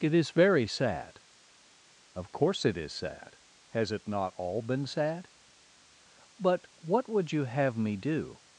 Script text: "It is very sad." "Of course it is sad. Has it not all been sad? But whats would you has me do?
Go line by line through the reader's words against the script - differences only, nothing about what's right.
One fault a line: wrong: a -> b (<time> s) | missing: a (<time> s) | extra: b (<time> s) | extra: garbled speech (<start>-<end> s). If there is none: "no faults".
wrong: whats -> what (6.8 s)
wrong: has -> have (7.4 s)